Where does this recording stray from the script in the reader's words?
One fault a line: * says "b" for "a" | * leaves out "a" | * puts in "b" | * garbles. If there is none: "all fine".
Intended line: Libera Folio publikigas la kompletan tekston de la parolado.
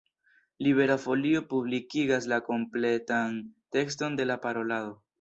all fine